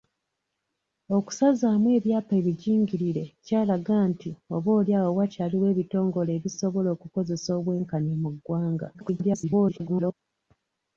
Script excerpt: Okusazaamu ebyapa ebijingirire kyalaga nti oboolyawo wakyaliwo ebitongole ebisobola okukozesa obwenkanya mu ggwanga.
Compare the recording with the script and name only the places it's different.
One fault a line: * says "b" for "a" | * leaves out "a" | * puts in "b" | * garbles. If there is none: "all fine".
* garbles